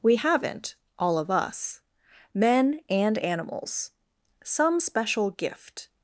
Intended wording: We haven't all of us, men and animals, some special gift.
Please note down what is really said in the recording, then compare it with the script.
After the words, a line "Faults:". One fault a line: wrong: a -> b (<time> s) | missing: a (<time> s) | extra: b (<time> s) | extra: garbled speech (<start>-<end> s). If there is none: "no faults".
We haven't all of us, men and animals, some special gift.
Faults:
no faults